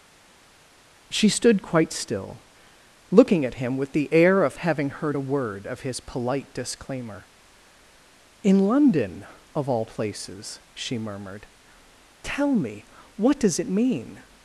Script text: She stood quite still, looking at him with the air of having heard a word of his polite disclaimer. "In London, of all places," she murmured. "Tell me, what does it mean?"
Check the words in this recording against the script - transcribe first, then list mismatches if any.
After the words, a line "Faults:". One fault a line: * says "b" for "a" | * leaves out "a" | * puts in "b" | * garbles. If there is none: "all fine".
She stood quite still, looking at him with the air of having heard a word of his polite disclaimer. "In London, of all places," she murmured. "Tell me, what does it mean?"
Faults:
all fine